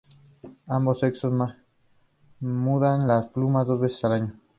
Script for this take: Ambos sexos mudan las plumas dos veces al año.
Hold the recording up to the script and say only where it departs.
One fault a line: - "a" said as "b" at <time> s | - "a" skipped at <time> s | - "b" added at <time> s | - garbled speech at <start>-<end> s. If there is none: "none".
none